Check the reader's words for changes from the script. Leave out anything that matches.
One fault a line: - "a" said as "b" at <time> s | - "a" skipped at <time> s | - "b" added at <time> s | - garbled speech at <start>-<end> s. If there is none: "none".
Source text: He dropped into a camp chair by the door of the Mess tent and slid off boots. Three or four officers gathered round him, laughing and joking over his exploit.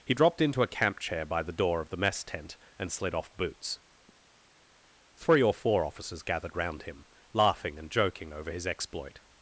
none